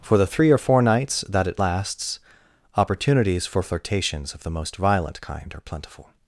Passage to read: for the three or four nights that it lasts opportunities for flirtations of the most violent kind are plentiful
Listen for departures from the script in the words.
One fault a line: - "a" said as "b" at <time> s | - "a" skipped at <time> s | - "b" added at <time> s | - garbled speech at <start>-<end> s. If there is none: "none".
none